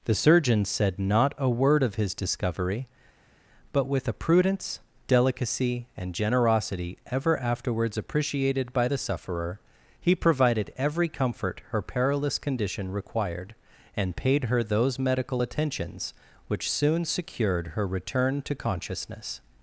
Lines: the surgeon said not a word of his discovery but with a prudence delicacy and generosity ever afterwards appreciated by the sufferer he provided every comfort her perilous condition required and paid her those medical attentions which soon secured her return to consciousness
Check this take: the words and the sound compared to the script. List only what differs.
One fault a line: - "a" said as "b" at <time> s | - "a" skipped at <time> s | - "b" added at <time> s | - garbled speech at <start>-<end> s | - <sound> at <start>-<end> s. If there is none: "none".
none